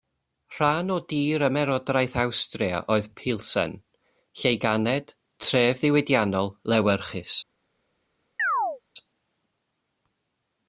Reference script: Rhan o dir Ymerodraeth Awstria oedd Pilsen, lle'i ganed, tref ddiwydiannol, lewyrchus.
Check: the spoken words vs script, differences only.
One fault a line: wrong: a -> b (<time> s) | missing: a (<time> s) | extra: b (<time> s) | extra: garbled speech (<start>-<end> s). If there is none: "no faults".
no faults